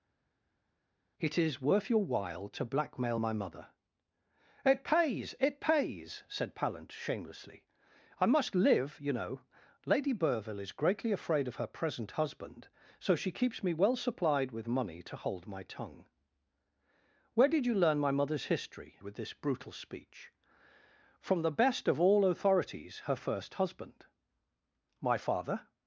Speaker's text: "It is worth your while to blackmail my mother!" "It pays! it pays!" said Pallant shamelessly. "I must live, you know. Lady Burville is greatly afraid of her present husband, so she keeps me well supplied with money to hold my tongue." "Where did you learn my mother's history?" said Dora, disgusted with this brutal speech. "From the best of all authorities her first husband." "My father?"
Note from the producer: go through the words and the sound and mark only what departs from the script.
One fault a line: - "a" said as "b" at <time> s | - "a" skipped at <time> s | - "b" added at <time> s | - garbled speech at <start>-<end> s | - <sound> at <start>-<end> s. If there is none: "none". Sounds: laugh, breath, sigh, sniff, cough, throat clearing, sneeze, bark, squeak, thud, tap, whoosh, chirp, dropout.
- "said Dora disgusted" skipped at 19.0 s